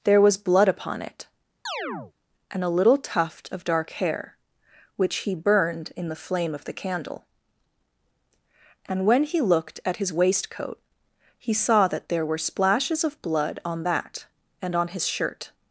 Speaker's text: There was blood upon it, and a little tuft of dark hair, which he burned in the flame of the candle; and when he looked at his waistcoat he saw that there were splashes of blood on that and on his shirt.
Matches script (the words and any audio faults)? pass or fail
fail